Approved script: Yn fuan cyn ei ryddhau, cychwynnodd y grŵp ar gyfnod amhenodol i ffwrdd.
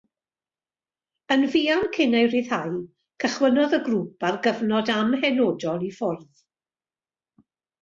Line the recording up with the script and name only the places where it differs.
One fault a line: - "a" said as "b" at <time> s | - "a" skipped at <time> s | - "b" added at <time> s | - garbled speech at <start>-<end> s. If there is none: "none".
none